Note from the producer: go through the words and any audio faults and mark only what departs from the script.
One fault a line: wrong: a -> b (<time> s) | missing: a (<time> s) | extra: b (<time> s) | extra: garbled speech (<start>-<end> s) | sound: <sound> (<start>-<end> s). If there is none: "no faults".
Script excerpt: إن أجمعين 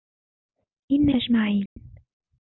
sound: dropout (1.7-1.8 s)